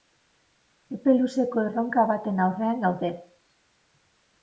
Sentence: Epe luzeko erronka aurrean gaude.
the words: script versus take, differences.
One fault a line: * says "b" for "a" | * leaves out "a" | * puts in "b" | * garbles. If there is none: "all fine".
* puts in "baten"